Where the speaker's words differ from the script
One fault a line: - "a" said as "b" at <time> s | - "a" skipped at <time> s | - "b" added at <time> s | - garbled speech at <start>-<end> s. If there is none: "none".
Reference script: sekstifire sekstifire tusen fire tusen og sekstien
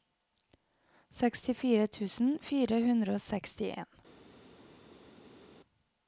- "sekstifire" skipped at 1.9 s
- "tusen" said as "hundre" at 2.9 s